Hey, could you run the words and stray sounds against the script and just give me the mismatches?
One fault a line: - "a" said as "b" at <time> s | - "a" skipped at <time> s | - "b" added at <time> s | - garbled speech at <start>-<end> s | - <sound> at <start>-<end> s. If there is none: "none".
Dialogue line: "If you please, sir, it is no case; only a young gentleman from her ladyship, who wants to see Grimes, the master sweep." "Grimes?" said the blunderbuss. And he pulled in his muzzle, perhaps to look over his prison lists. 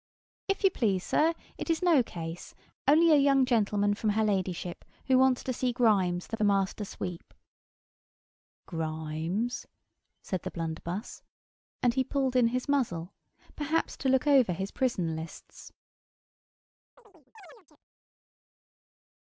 - "the" added at 6.3 s
- chirp at 17.0-17.8 s